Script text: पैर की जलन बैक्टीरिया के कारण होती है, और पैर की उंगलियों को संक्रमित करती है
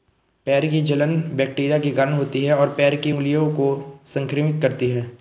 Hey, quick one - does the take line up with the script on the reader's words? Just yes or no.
yes